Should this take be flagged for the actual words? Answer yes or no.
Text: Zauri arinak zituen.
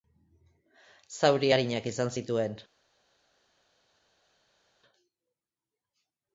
yes